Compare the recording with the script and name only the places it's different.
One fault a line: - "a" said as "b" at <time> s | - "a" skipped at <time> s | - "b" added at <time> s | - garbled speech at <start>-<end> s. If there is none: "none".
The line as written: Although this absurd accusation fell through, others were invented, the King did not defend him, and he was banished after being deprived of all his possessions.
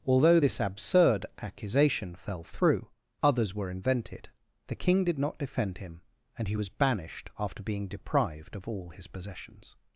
none